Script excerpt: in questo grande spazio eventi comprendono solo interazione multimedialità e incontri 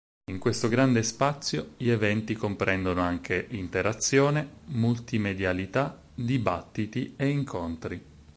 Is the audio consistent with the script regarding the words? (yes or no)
no